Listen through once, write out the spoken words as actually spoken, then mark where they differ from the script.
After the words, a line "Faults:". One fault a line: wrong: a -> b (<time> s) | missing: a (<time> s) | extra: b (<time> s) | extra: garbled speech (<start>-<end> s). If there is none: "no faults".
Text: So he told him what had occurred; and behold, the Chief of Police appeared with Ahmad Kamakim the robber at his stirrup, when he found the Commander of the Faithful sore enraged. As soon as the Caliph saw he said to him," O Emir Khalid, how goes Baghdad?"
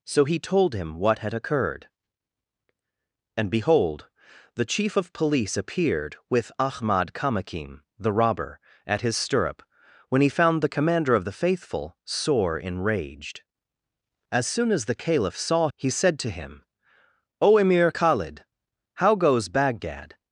So he told him what had occurred; and behold, the Chief of Police appeared with Ahmad Kamakim the robber at his stirrup, when he found the Commander of the Faithful sore enraged. As soon as the Caliph saw he said to him," O Emir Khalid, how goes Baghdad?"
Faults:
no faults